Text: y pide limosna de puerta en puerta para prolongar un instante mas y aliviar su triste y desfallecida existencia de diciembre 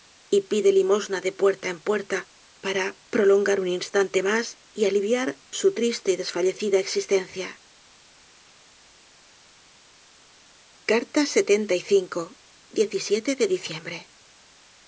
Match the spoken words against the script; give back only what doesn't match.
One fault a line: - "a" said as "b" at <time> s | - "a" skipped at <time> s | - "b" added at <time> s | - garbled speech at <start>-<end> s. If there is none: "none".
none